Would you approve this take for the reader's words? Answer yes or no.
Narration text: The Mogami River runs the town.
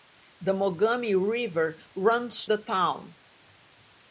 yes